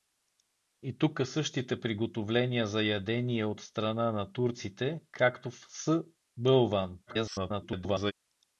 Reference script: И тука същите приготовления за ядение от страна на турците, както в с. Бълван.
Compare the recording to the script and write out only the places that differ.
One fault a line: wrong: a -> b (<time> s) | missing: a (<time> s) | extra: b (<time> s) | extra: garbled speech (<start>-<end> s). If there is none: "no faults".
extra: garbled speech (7.1-8.1 s)